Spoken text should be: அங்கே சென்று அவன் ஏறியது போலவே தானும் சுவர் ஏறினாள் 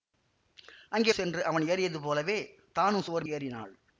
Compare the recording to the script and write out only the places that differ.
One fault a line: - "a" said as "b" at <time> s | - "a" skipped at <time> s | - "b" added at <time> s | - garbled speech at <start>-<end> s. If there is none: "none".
none